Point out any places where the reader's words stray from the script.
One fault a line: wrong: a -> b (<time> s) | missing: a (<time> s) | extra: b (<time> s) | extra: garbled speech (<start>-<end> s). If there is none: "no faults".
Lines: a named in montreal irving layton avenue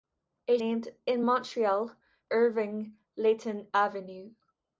no faults